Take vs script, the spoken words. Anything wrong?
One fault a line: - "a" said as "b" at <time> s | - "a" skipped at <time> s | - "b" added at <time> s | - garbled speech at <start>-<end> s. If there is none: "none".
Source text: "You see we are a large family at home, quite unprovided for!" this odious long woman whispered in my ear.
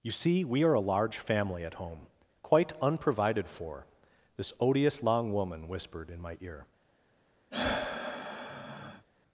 none